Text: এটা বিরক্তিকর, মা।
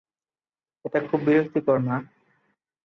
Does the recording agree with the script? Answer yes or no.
no